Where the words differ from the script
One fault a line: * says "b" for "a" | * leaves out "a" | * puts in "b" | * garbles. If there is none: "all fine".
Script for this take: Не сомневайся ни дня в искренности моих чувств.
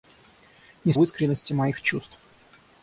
* leaves out "сомневайся ни дня"